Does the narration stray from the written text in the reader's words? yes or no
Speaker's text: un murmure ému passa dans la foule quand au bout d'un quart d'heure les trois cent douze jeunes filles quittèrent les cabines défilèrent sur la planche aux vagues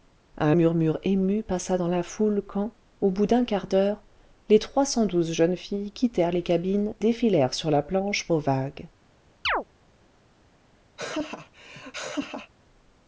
no